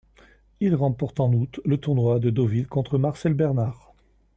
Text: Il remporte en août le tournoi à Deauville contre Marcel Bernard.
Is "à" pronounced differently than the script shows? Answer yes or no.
yes